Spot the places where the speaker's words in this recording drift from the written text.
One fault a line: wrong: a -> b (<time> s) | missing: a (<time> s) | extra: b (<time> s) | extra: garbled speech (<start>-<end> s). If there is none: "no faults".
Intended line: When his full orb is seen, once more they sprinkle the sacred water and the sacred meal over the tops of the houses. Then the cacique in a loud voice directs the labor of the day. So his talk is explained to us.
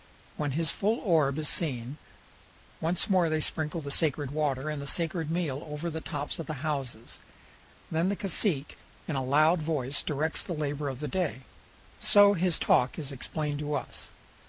no faults